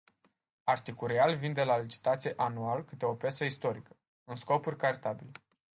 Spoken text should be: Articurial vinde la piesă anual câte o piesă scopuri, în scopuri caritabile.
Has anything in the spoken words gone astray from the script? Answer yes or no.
yes